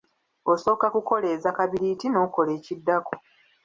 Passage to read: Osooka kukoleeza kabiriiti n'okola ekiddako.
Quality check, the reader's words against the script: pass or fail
pass